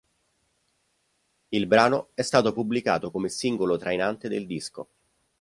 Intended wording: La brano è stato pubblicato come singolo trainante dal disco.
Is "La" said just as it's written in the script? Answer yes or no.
no